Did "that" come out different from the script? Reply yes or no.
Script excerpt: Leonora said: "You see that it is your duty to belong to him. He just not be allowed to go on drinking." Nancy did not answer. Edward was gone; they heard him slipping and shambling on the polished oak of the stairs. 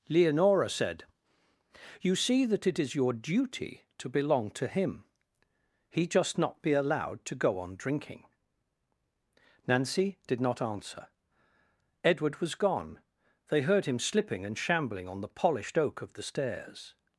no